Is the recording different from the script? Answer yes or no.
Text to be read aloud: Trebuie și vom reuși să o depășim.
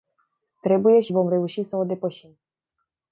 no